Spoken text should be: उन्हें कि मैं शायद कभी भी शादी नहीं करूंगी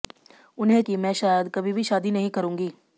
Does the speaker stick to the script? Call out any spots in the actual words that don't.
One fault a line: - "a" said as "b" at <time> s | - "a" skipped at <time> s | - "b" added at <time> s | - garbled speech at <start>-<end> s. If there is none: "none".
none